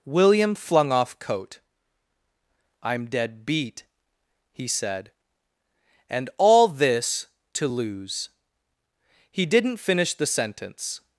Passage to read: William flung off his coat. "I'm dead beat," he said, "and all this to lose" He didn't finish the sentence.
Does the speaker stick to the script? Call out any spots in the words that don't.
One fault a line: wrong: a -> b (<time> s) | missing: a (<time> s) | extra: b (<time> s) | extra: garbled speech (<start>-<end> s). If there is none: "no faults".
missing: his (1.2 s)